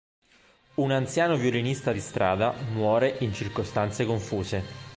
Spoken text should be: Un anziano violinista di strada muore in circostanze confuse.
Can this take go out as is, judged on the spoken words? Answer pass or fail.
pass